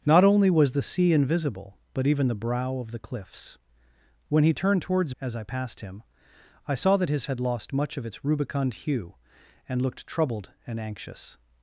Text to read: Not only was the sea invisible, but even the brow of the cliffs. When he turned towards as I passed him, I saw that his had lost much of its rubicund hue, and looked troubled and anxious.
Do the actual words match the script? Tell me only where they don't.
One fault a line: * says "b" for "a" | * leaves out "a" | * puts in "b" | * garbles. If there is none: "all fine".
all fine